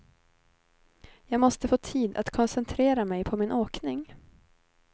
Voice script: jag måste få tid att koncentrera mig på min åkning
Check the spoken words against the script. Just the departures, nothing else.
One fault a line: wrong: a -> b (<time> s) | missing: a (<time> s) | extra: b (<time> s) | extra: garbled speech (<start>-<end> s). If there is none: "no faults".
no faults